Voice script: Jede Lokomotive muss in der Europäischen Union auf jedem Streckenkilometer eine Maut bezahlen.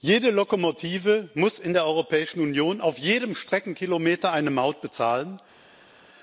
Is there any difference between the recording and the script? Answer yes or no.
no